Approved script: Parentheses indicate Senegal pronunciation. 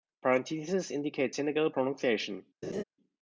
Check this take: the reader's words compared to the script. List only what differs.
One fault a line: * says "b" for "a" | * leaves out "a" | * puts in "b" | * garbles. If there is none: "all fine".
all fine